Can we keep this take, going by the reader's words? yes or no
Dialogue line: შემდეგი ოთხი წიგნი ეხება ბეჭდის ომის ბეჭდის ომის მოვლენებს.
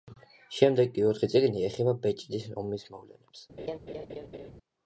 no